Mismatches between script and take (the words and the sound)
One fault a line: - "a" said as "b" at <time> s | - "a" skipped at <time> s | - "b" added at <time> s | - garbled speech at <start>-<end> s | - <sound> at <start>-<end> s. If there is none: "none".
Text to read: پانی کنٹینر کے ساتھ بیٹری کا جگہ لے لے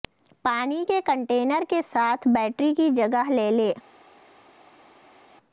- "کے" added at 0.9 s
- "کا" said as "کی" at 2.7 s